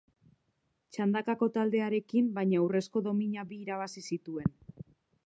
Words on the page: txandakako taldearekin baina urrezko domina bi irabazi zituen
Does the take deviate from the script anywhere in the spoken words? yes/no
no